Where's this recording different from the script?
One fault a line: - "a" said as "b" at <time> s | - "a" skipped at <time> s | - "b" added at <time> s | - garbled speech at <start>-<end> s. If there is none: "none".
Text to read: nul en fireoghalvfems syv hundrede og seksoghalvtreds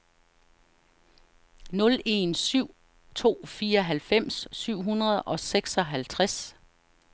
- "syv to" added at 2.3 s